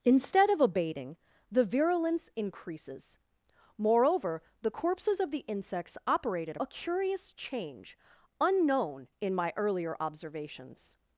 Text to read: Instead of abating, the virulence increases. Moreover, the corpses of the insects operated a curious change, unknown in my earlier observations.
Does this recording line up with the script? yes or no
yes